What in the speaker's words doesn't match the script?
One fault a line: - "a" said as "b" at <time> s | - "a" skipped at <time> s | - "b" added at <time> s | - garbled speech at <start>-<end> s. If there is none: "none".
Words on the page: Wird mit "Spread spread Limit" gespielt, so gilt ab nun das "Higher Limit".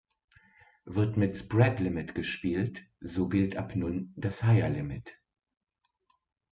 - "spread" skipped at 1.8 s